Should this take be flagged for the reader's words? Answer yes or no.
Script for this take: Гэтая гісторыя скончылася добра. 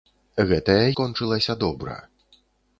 yes